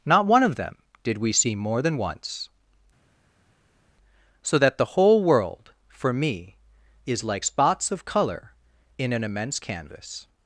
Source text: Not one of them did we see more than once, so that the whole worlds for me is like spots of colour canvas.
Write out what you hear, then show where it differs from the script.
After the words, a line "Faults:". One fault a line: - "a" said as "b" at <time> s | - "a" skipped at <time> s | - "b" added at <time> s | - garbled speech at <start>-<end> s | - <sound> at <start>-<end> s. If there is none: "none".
Not one of them did we see more than once, so that the whole world for me is like spots of colour in an immense canvas.
Faults:
- "worlds" said as "world" at 5.2 s
- "in an immense" added at 9.0 s